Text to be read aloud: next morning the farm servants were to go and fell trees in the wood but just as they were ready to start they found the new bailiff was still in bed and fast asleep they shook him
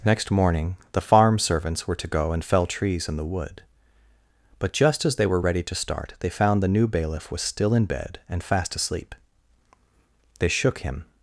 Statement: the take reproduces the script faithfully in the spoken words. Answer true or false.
true